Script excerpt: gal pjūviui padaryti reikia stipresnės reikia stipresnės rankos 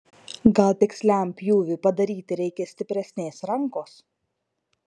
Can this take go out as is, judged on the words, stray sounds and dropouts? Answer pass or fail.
fail